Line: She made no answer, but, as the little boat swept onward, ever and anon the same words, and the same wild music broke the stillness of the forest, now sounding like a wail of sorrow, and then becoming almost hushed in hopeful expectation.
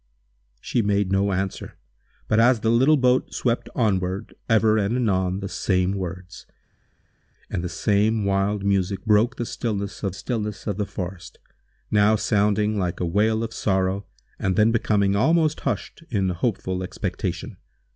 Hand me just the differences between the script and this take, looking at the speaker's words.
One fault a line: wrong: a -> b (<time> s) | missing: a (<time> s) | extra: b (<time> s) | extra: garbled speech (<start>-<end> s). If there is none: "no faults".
extra: stillness of (10.1 s)